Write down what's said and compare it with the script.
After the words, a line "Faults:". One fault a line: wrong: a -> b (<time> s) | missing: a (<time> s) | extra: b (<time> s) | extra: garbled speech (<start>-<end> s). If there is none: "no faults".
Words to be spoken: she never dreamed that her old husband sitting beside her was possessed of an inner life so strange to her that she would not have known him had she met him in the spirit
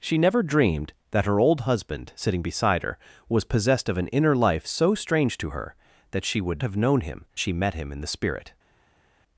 she never dreamed that her old husband sitting beside her was possessed of an inner life so strange to her that she would have known him she met him in the spirit
Faults:
missing: not (6.6 s)
missing: had (7.2 s)